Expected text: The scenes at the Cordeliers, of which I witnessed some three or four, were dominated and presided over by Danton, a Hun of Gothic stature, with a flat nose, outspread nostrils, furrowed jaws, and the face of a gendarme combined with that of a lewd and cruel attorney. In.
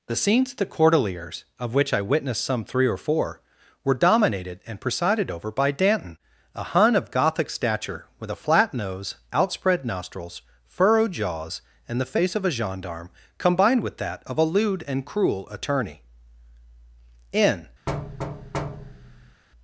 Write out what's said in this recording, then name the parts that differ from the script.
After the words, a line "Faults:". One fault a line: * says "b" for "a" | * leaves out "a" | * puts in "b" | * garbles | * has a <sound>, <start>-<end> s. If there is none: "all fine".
The scenes at the Cordeliers, of which I witnessed some three or four, were dominated and presided over by Danton, a Hun of Gothic stature, with a flat nose, outspread nostrils, furrowed jaws, and the face of a gendarme combined with that of a lewd and cruel attorney. In.
Faults:
* has a thud, 17.9-19.4 s